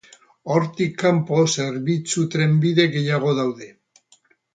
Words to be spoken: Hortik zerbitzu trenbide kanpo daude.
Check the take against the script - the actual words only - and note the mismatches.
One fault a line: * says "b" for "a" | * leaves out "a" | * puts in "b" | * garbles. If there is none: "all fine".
* puts in "kanpo"
* says "gehiago" for "kanpo"